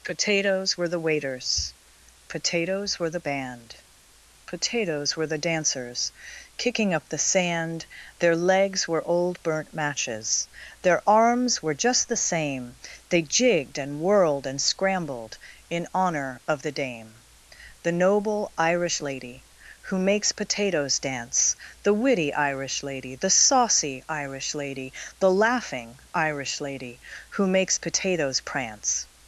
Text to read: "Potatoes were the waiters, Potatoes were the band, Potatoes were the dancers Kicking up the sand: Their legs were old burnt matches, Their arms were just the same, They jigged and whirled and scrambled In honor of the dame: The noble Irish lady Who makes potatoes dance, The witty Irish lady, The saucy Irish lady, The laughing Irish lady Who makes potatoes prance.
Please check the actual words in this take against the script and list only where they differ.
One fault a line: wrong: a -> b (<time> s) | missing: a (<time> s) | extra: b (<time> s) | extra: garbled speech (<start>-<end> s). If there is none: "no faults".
no faults